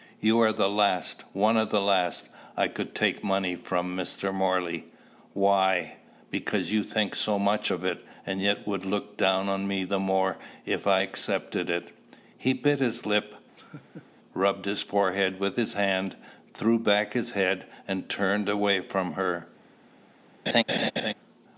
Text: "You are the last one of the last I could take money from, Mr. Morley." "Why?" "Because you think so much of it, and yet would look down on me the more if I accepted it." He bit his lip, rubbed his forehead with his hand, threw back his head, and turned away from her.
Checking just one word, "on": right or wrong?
right